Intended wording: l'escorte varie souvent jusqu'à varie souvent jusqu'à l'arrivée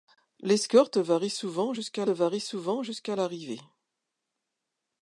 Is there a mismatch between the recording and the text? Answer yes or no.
no